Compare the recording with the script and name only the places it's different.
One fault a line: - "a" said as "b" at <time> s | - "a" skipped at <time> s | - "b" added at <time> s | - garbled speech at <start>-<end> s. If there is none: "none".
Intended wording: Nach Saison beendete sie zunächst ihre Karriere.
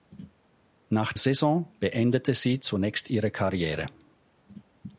none